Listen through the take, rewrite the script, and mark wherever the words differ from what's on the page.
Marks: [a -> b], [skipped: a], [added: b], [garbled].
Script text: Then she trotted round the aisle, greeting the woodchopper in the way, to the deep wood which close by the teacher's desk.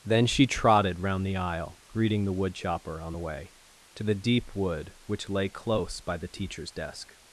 Then she trotted round the aisle, greeting the woodchopper [in -> on] the way, to the deep wood which [added: lay] close by the teacher's desk.